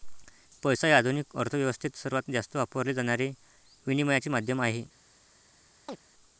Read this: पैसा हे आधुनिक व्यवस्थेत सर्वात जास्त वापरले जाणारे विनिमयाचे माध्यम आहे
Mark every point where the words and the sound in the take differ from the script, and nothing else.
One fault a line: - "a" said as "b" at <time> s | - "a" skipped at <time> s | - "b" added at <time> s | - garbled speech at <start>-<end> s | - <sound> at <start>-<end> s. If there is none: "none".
- "अर्थ" added at 1.4 s
- chirp at 5.9-6.0 s